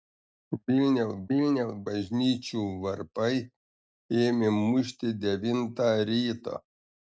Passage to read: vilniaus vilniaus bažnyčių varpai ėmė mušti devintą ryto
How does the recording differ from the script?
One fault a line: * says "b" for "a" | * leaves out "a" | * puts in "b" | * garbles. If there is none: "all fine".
all fine